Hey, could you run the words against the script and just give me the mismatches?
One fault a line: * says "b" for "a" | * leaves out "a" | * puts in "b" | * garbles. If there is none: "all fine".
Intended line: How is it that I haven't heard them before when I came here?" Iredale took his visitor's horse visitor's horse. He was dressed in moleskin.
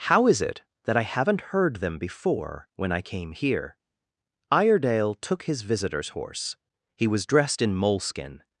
* leaves out "visitor's horse"